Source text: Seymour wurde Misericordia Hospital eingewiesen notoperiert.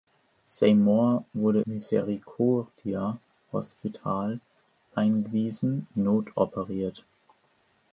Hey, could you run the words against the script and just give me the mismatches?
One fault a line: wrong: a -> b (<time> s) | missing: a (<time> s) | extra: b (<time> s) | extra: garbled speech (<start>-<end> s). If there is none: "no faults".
no faults